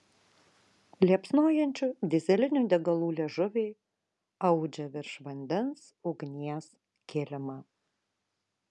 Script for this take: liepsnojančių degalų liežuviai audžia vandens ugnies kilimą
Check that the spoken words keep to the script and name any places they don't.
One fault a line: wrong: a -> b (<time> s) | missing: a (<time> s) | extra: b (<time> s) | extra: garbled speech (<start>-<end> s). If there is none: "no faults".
extra: dyzelinių (2.1 s)
extra: virš (5.0 s)